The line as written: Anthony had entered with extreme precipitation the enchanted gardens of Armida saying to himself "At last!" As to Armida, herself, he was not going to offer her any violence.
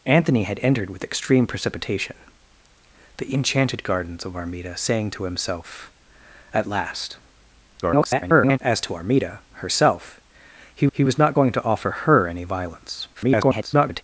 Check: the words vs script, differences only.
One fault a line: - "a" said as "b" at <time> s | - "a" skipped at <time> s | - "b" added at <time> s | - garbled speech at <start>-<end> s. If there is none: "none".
- garbled speech at 7.8-8.6 s
- "he" added at 10.9 s
- garbled speech at 13.1-14.0 s